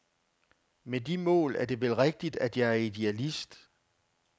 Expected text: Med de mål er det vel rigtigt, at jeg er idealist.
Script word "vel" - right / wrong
right